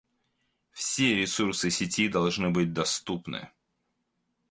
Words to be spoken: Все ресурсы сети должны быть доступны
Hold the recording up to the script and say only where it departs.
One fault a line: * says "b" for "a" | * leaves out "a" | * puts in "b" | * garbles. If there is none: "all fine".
all fine